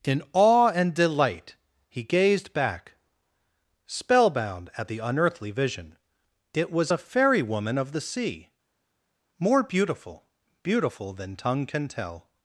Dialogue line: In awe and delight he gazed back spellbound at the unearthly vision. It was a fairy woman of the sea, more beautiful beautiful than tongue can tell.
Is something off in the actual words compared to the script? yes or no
no